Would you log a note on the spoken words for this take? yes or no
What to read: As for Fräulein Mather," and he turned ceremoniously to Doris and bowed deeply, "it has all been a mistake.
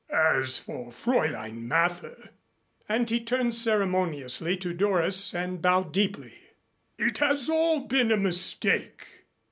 no